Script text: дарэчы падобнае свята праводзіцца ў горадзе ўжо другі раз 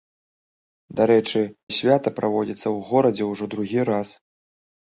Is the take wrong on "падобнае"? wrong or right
wrong